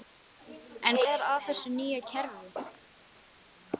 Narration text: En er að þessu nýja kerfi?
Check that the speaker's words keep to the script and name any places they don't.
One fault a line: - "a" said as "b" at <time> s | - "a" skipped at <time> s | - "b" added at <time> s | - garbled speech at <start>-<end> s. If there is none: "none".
none